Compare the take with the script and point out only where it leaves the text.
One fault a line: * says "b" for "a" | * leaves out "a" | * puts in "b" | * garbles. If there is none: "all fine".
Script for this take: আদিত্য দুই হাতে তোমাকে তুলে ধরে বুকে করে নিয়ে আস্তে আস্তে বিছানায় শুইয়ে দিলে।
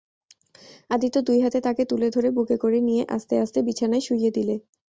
* says "তাকে" for "তোমাকে"